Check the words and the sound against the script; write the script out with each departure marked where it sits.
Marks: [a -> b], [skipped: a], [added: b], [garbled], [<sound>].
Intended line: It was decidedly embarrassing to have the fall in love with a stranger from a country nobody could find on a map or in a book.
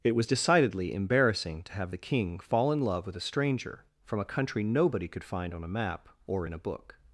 It was decidedly embarrassing to have the [added: king] fall in love with a stranger from a country nobody could find on a map or in a book.